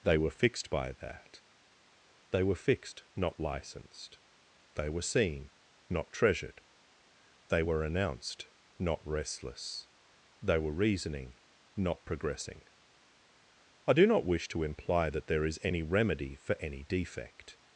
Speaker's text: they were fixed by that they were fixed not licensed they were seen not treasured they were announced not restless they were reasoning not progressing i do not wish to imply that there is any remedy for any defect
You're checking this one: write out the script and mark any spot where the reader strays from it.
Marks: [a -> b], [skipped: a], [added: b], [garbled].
they were fixed by that they were fixed not licensed they were seen not treasured they were announced not restless they were reasoning not progressing i do not wish to imply that there is any remedy for any defect